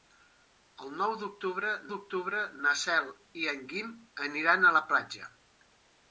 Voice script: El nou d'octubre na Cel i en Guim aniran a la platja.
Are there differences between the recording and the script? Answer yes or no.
yes